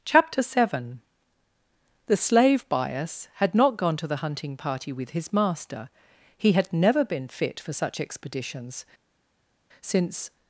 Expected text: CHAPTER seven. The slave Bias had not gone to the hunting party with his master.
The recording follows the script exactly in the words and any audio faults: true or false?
false